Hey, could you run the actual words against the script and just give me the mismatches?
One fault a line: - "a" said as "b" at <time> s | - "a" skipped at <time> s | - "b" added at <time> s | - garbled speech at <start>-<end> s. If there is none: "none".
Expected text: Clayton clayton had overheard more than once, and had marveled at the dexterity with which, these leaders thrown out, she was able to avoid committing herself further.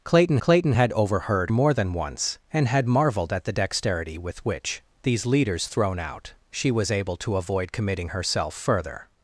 none